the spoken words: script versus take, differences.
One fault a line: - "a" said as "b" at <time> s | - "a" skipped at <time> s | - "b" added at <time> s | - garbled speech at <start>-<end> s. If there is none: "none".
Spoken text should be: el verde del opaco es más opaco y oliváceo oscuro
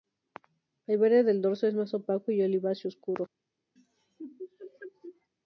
- "opaco" said as "dorso" at 1.4 s